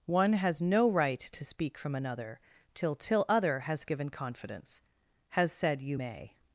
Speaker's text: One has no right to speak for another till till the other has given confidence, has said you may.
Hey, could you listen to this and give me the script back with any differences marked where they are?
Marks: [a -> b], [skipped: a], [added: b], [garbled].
One has no right to speak [for -> from] another till till [skipped: the] other has given confidence, has said you may.